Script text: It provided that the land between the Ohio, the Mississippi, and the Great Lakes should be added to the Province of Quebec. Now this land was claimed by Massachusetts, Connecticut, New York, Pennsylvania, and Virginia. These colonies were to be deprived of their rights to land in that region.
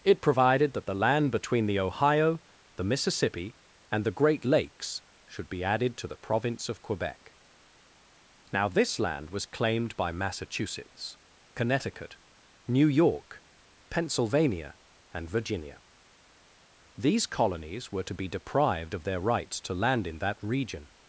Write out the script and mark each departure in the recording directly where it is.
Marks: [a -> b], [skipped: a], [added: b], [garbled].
It provided that the land between the Ohio, the Mississippi, and the Great Lakes should be added to the Province of Quebec. Now this land was claimed by Massachusetts, Connecticut, New York, Pennsylvania, and Virginia. These colonies were to be deprived of their rights to land in that region.